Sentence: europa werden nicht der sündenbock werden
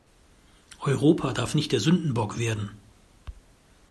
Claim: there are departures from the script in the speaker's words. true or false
true